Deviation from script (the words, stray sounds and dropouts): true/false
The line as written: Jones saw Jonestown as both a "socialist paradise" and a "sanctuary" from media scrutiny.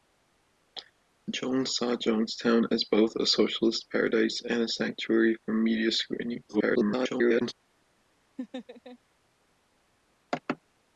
true